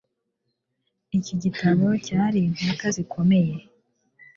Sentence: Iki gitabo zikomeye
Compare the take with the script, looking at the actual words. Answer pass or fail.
fail